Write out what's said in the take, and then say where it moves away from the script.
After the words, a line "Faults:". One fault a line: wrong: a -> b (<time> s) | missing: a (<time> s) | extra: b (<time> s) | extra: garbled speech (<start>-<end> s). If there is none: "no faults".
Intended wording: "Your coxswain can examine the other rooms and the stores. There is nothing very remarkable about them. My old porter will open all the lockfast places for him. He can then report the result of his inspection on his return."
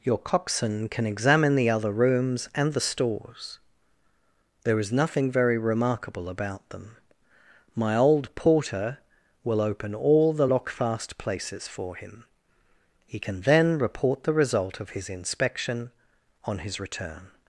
"Your coxswain can examine the other rooms and the stores. There is nothing very remarkable about them. My old porter will open all the lockfast places for him. He can then report the result of his inspection on his return."
Faults:
no faults